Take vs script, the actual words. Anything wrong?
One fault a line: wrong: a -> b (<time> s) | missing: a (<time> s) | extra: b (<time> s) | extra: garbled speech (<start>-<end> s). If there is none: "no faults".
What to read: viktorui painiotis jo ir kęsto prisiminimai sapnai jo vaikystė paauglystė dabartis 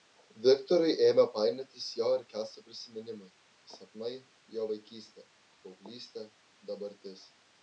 extra: ėmė (1.1 s)